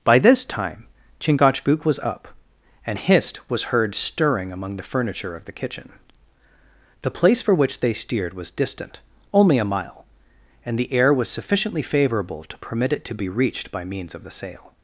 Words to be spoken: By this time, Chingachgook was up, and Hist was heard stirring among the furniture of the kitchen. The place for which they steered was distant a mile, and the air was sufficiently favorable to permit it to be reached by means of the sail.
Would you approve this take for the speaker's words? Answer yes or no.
no